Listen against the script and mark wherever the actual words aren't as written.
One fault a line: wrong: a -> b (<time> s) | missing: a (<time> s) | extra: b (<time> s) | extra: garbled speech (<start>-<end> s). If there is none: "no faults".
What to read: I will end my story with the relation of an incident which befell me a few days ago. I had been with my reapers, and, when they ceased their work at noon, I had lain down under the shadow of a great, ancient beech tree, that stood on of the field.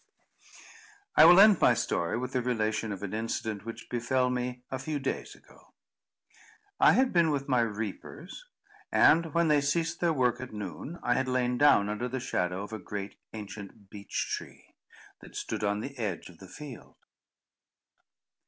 extra: the edge (15.8 s)